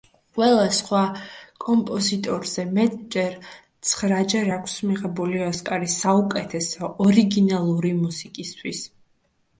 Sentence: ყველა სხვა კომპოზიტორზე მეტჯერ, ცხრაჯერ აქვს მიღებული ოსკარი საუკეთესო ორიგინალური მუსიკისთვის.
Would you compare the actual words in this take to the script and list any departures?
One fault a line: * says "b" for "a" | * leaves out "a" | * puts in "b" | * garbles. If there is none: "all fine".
all fine